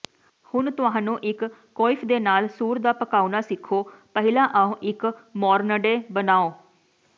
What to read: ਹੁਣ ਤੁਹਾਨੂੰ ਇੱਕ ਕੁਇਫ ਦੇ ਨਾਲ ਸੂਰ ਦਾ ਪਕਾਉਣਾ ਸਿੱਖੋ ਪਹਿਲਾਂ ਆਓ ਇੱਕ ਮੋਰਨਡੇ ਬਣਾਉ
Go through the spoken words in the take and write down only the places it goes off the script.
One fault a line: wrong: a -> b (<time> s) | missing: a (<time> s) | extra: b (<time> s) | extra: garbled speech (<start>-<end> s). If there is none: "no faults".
no faults